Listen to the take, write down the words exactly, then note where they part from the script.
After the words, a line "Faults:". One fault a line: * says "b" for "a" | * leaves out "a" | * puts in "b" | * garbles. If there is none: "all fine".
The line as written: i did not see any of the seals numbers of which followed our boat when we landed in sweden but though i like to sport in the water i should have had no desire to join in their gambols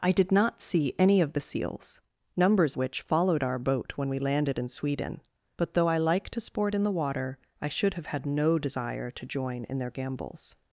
i did not see any of the seals numbers which followed our boat when we landed in sweden but though i like to sport in the water i should have had no desire to join in their gambols
Faults:
* leaves out "of"